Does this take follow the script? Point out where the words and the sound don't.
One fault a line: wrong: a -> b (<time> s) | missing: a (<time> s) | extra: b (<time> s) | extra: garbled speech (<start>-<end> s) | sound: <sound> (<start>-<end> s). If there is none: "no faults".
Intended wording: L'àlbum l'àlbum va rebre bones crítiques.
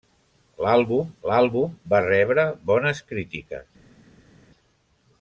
no faults